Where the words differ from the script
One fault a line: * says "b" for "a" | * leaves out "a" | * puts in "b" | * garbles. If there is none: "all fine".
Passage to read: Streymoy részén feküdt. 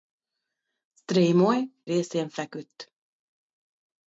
all fine